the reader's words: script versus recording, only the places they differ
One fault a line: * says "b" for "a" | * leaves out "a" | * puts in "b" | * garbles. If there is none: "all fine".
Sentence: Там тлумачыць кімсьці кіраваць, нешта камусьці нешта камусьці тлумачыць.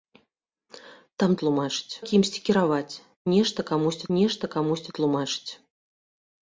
all fine